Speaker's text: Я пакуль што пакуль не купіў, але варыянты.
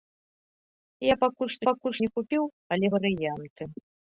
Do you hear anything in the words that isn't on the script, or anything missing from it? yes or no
no